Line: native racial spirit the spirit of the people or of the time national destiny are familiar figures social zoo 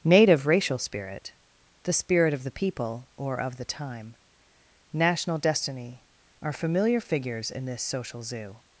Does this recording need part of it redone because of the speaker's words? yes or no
yes